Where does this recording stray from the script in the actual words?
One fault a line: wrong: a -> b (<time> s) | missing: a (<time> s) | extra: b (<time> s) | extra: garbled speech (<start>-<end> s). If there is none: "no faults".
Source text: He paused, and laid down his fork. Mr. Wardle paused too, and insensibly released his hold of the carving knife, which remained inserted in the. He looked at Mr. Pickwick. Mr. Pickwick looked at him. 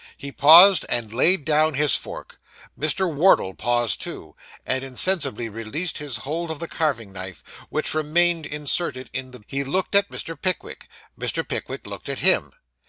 no faults